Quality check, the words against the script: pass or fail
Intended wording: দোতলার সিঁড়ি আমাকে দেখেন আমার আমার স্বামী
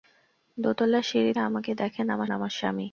pass